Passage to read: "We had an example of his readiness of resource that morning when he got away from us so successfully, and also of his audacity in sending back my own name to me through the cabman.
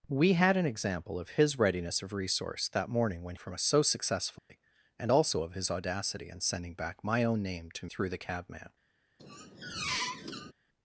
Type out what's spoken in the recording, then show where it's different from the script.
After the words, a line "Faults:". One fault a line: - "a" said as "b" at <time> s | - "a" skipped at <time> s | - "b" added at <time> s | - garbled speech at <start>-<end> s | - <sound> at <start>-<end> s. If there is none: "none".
"We had an example of his readiness of resource that morning when from us so successfully, and also of his audacity in sending back my own name to through the cabman.
Faults:
- "he got away" skipped at 3.4 s
- dropout at 4.4-4.5 s
- "me" skipped at 7.9 s
- squeak at 9.2-10.5 s